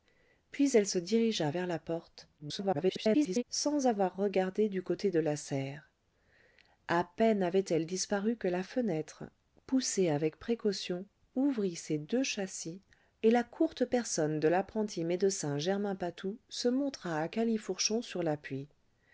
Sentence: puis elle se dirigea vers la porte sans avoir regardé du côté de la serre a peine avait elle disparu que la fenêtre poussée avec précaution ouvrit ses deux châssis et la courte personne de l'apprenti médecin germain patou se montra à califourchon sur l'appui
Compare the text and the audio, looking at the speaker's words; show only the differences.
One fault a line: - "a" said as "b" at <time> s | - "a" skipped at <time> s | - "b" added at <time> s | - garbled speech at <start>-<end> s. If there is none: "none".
- garbled speech at 2.4-3.4 s